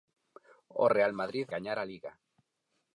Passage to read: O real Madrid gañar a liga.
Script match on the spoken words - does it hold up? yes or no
yes